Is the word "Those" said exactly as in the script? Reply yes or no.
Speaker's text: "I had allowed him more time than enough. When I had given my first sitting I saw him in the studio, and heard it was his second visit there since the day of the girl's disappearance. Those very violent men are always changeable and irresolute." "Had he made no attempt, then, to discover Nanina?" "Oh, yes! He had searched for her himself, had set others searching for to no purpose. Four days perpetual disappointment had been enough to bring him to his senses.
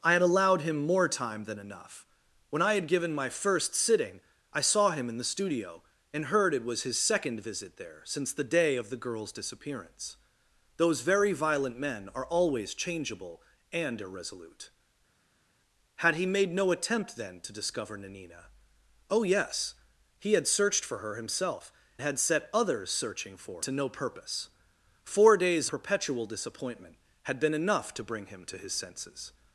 yes